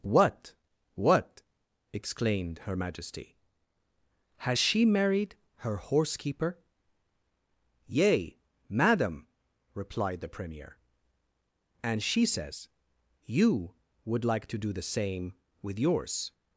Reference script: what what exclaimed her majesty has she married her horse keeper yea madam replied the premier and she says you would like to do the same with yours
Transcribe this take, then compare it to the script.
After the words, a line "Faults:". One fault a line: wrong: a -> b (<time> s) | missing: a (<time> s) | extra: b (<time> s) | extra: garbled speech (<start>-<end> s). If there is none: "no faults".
what what exclaimed her majesty has she married her horse keeper yea madam replied the premier and she says you would like to do the same with yours
Faults:
no faults